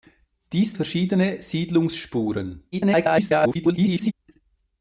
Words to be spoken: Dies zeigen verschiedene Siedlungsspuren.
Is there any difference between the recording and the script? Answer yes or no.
yes